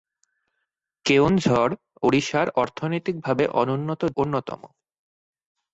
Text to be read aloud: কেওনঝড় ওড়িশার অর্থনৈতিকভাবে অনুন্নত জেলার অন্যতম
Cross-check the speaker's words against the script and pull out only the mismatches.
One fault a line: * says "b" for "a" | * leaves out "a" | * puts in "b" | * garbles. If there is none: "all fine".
* leaves out "জেলার"